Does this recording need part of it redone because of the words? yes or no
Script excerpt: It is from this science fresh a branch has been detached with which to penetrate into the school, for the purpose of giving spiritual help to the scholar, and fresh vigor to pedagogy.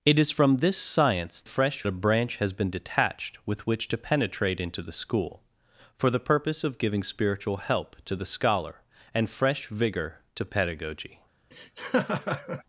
no